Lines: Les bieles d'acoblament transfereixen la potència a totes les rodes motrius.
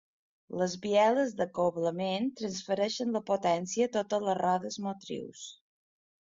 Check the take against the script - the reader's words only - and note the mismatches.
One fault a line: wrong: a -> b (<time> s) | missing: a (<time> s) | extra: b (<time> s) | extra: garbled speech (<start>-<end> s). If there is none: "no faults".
no faults